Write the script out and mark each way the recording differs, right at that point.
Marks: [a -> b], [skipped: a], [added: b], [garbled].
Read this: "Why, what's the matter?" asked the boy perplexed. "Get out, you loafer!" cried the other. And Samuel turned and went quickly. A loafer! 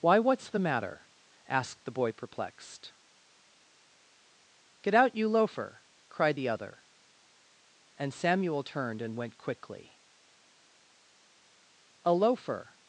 "Why, what's the matter?" asked the boy perplexed. "Get out, you loafer!" cried the other. And Samuel turned and went quickly. A loafer!